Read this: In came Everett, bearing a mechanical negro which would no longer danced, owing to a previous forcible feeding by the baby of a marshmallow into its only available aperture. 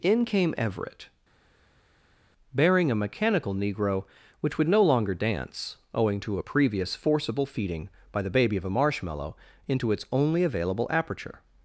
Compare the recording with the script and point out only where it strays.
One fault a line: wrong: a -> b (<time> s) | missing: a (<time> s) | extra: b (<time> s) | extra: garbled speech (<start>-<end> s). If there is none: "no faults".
wrong: danced -> dance (5.1 s)